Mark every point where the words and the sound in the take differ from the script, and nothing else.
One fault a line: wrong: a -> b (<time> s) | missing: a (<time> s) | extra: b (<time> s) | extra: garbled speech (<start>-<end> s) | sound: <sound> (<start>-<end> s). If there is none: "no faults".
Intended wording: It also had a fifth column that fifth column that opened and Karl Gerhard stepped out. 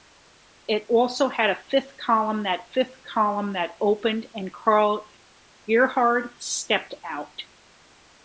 no faults